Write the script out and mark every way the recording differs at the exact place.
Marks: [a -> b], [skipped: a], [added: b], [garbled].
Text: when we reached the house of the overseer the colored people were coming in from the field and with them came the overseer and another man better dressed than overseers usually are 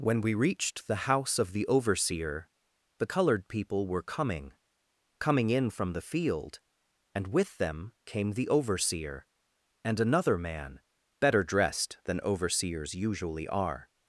when we reached the house of the overseer the colored people were coming [added: coming] in from the field and with them came the overseer and another man better dressed than overseers usually are